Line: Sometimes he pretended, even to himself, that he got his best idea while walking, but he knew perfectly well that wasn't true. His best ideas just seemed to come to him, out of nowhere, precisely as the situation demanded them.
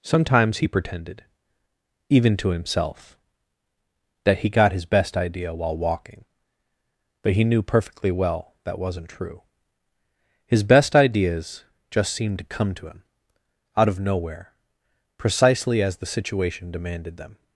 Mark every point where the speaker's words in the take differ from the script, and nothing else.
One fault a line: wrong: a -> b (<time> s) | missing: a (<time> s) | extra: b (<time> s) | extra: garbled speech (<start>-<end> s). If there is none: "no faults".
no faults